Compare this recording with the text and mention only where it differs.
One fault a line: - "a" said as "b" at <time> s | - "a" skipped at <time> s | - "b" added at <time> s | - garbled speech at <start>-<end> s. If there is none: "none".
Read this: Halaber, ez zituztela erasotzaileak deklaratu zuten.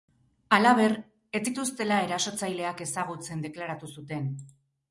- "ezagutzen" added at 2.9 s